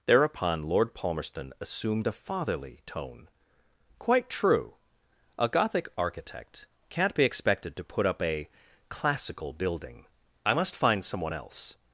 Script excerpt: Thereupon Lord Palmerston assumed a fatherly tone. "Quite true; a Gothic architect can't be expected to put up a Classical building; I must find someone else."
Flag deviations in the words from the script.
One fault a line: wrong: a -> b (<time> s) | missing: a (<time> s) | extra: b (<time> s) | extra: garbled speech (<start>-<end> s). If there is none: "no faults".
no faults